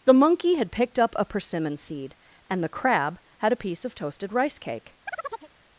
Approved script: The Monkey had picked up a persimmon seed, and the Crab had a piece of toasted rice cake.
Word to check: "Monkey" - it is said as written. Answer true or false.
true